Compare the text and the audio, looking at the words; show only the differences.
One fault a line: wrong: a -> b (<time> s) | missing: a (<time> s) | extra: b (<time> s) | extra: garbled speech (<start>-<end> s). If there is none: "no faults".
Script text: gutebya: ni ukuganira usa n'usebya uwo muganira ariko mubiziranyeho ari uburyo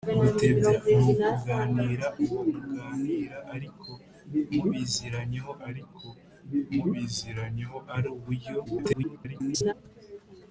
wrong: usa n'usebya uwo muganira -> uwo muganira ariko mubiziranyeho (2.2 s)
extra: garbled speech (8.6-9.7 s)